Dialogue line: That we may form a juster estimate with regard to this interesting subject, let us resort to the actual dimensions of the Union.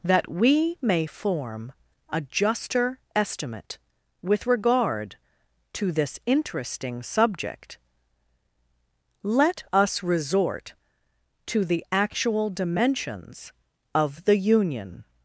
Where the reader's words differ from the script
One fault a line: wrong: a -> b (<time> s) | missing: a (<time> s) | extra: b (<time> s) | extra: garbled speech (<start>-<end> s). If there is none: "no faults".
no faults